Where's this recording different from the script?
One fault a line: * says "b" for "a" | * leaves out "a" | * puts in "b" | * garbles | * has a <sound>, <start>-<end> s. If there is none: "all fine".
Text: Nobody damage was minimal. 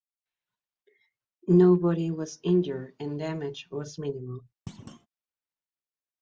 * puts in "was injured and"
* has a thud, 4.7-5.1 s